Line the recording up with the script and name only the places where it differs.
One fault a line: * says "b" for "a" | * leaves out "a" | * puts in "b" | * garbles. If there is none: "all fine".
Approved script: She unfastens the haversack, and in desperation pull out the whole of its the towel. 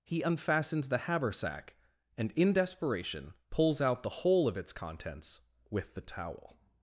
* says "He" for "She"
* says "pulls" for "pull"
* puts in "contents with"